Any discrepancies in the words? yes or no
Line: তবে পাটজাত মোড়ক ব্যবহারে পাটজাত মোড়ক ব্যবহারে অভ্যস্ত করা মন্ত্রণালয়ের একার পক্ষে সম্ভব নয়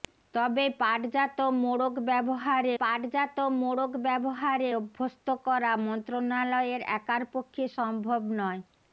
no